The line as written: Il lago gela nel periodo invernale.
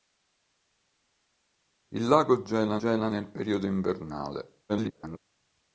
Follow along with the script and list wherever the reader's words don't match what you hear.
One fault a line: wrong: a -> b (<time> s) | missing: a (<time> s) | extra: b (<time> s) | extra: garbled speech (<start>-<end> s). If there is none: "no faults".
extra: gela (2.7 s)
extra: garbled speech (4.7-5.2 s)